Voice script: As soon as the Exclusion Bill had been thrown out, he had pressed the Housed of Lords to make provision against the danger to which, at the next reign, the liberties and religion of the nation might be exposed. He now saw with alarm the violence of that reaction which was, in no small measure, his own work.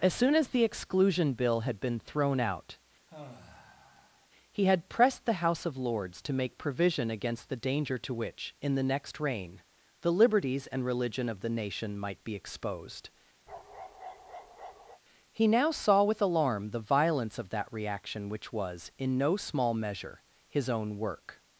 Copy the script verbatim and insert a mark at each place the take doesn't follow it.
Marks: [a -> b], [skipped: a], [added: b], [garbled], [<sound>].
As soon as the Exclusion Bill had been thrown out, [sigh] he had pressed the [Housed -> House] of Lords to make provision against the danger to which, [at -> in] the next reign, the liberties and religion of the nation might be exposed. [bark] He now saw with alarm the violence of that reaction which was, in no small measure, his own work.